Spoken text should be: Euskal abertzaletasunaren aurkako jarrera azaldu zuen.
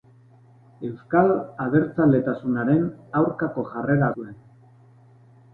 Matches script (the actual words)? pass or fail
fail